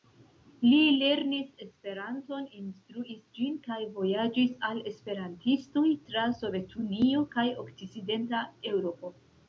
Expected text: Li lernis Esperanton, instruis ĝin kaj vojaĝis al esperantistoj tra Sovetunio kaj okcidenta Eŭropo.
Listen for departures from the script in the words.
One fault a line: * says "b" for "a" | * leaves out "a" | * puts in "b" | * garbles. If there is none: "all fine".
all fine